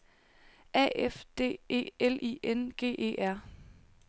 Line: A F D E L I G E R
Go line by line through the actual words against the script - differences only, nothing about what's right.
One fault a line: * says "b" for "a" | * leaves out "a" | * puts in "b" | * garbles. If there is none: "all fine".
* puts in "N"